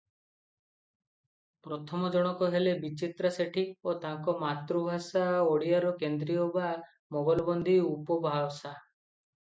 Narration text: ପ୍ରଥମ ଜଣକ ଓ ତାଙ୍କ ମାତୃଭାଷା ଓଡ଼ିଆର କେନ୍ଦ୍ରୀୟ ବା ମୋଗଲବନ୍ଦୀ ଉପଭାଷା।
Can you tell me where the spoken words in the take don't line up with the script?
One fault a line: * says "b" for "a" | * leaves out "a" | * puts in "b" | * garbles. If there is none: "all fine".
* puts in "ହେଲେ ବିଚିତ୍ରା ସେଠୀ"